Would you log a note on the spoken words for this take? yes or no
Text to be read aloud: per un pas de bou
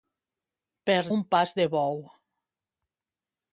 no